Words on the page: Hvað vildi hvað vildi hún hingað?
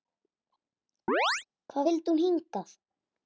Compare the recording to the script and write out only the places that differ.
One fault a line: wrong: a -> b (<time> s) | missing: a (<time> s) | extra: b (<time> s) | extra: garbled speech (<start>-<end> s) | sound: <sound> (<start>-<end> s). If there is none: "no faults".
sound: chirp (1.1-1.4 s)
missing: hvað vildi (2.2 s)